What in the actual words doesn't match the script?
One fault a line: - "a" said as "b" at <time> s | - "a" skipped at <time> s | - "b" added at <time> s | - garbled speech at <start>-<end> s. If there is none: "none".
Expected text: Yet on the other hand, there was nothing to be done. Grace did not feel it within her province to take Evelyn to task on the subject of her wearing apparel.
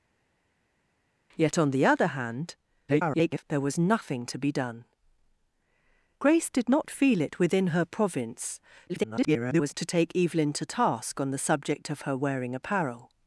- garbled speech at 2.9-3.4 s
- garbled speech at 8.9-9.7 s